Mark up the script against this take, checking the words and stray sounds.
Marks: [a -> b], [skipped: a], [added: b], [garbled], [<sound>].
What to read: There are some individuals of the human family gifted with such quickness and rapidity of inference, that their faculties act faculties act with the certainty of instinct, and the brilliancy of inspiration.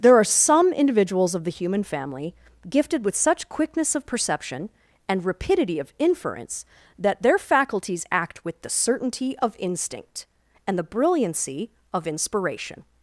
There are some individuals of the human family gifted with such quickness [added: of perception] and rapidity of inference, that their faculties act [skipped: faculties act] with the certainty of instinct, and the brilliancy of inspiration.